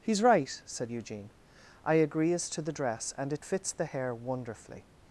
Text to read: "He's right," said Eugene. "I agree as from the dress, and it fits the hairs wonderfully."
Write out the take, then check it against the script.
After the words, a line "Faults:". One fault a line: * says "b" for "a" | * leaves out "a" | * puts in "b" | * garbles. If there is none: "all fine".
"He's right," said Eugene. "I agree as to the dress, and it fits the hair wonderfully."
Faults:
* says "to" for "from"
* says "hair" for "hairs"